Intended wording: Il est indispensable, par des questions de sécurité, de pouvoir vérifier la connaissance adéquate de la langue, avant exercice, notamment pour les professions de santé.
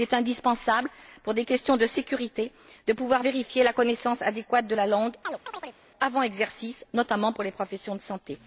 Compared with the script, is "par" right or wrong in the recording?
wrong